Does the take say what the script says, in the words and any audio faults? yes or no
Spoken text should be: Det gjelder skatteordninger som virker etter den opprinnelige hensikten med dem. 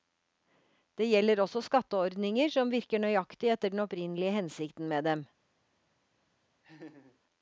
no